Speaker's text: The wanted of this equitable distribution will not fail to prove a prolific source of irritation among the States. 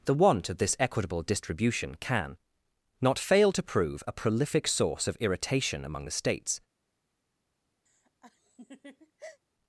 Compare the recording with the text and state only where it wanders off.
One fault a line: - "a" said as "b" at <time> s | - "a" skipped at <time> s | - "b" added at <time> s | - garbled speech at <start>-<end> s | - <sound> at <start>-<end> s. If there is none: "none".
- "wanted" said as "want" at 0.1 s
- "will" said as "can" at 1.9 s
- laugh at 7.9-9.4 s